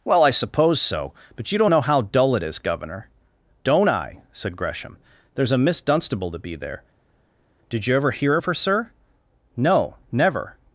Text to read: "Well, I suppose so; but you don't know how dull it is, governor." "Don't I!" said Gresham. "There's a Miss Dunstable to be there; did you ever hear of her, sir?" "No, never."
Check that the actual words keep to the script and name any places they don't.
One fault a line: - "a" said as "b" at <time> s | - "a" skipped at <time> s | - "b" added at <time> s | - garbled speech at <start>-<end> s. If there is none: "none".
none